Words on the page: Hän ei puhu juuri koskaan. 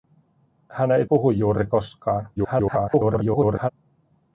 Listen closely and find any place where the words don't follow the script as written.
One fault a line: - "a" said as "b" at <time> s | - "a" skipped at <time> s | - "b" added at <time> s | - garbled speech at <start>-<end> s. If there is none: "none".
- garbled speech at 2.4-3.7 s